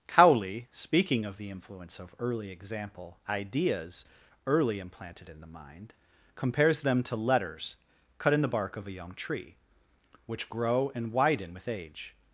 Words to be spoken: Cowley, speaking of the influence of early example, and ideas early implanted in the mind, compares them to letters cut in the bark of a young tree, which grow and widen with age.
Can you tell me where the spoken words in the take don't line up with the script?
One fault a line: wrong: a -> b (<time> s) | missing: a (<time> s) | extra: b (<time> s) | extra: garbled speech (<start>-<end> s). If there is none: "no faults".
missing: and (3.2 s)